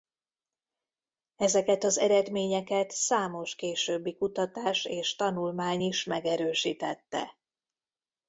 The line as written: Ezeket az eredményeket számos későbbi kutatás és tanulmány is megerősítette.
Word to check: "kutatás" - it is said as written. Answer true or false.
true